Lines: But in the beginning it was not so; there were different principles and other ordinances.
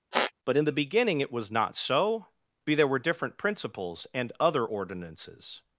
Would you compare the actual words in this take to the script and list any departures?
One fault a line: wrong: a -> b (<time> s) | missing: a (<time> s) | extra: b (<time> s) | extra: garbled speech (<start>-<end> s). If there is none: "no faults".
extra: be (2.7 s)